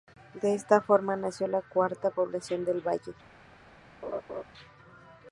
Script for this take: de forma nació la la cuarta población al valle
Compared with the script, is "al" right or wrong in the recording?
wrong